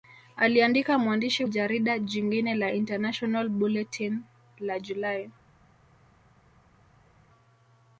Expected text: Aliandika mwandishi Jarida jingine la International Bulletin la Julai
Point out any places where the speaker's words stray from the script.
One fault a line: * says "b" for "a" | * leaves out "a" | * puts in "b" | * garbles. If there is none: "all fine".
all fine